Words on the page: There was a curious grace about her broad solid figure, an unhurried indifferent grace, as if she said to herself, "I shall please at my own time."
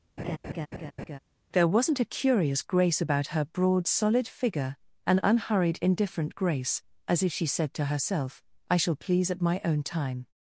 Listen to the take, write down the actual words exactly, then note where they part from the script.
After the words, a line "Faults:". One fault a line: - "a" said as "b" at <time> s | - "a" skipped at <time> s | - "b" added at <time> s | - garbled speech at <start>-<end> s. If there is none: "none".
There wasn't a curious grace about her broad solid figure, an unhurried indifferent grace, as if she said to herself, "I shall please at my own time."
Faults:
- "was" said as "wasn't" at 1.7 s